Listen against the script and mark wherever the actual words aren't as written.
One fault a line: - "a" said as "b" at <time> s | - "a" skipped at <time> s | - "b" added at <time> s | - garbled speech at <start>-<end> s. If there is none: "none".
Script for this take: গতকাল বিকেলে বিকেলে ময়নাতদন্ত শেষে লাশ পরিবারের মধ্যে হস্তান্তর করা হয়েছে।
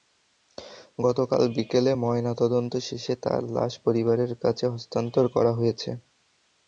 - "বিকেলে" skipped at 1.9 s
- "তাঁর" added at 3.2 s
- "মধ্যে" said as "কাছে" at 4.4 s